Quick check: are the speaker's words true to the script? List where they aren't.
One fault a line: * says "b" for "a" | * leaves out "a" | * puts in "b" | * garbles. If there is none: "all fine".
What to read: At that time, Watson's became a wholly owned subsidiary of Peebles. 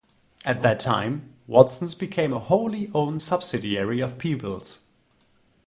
all fine